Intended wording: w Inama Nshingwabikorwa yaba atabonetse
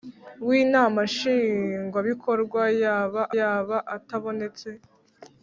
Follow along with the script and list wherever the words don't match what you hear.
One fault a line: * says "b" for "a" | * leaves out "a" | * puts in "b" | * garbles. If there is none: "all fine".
* puts in "yaba"